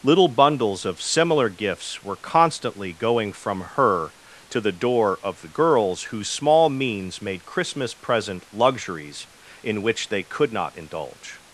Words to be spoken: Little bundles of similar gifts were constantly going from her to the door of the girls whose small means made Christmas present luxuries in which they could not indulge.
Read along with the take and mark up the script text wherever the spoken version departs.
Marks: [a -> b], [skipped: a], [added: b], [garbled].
Little bundles of similar gifts were constantly going from her to the door of the girls whose small means made Christmas present luxuries in which they could not indulge.